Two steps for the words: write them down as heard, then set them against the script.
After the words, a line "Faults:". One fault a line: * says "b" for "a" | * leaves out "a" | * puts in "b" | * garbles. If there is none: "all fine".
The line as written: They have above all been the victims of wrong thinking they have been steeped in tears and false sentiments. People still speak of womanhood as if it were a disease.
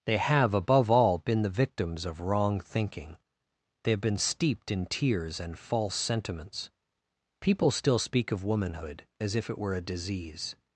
They have above all been the victims of wrong thinking they have been steeped in tears and false sentiments. People still speak of womanhood as if it were a disease.
Faults:
all fine